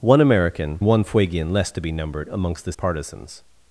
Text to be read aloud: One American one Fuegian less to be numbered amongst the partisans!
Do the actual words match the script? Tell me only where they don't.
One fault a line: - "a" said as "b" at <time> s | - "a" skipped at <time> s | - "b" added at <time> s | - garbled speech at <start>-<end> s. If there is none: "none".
none